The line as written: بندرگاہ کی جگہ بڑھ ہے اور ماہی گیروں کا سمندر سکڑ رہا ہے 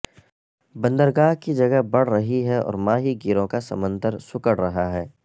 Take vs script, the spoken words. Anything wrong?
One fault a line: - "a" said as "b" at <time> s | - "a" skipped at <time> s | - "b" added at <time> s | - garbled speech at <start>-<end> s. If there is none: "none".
- "رہی" added at 2.1 s